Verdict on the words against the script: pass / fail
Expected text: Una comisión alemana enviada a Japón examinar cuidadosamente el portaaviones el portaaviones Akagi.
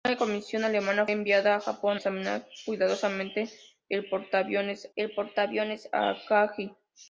pass